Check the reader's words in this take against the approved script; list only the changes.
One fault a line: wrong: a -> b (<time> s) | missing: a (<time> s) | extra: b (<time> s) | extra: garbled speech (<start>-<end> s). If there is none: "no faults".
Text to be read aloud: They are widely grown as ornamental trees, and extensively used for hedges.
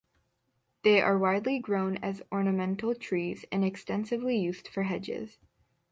no faults